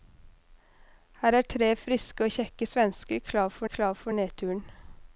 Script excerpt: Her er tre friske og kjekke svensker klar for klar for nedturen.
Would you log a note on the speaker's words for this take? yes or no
no